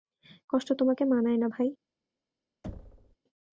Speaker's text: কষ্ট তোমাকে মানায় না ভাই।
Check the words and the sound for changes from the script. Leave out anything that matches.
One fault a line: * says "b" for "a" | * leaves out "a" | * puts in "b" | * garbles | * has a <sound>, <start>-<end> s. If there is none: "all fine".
* has a thud, 2.6-3.2 s